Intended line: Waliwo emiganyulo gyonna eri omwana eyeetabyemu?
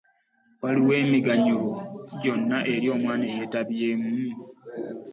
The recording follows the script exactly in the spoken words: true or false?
true